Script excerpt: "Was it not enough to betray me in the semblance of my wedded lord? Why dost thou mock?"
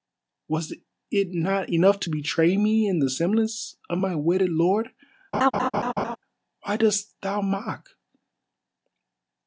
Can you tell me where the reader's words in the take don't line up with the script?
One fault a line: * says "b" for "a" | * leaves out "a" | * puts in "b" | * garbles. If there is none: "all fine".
all fine